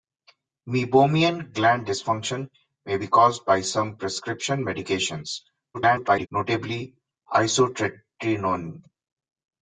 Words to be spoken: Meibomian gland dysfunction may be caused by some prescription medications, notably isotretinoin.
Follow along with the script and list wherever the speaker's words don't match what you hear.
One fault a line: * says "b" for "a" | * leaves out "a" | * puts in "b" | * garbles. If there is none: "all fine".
* garbles